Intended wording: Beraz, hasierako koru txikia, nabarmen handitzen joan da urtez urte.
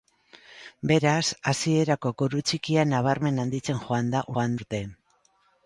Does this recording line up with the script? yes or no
no